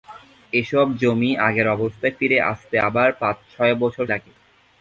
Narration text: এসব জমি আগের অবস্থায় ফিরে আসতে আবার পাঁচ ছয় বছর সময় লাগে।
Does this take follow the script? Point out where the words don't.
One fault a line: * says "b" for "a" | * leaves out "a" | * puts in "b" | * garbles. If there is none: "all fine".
* leaves out "সময়"